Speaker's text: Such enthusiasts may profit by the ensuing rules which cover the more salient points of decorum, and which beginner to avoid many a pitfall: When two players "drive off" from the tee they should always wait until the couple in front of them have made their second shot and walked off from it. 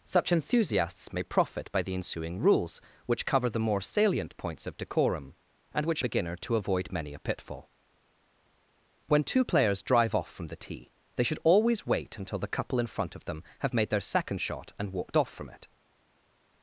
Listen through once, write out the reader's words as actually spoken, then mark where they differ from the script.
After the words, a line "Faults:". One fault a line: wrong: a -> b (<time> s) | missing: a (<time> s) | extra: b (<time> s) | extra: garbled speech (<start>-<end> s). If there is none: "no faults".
Such enthusiasts may profit by the ensuing rules which cover the more salient points of decorum, and which beginner to avoid many a pitfall: When two players "drive off" from the tee they should always wait until the couple in front of them have made their second shot and walked off from it.
Faults:
no faults